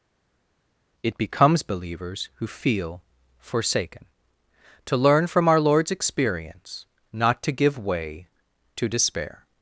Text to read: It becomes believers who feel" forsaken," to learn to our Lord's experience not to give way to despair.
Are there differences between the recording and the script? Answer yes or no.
yes